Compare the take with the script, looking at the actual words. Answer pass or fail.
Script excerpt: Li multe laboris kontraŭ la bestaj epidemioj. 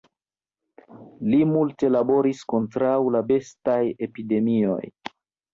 pass